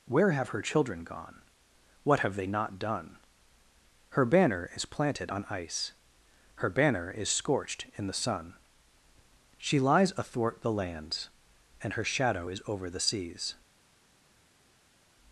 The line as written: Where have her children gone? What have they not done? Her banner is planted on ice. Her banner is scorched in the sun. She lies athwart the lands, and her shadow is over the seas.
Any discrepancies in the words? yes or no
no